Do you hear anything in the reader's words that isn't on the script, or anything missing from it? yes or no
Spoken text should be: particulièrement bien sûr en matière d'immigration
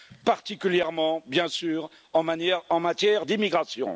no